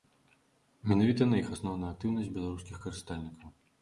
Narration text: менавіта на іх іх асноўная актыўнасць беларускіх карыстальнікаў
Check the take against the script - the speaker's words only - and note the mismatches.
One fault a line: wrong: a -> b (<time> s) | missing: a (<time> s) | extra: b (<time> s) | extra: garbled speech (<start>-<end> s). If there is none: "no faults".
missing: іх (1.5 s)